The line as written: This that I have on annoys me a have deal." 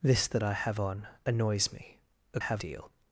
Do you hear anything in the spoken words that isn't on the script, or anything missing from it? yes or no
no